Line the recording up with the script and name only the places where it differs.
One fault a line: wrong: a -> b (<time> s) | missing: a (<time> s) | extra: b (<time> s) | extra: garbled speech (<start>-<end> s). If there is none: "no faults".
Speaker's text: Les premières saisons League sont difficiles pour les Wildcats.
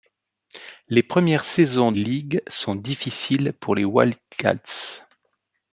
no faults